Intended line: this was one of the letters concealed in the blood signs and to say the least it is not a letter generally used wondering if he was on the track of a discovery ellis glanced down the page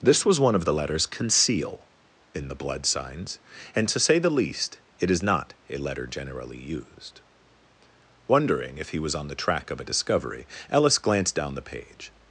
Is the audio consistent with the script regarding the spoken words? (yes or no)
no